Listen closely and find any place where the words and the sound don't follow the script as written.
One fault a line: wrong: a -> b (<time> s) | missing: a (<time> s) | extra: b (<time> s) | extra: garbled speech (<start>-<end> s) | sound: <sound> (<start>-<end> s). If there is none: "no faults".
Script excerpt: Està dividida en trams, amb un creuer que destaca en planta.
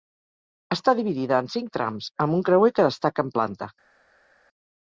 extra: cinc (1.6 s)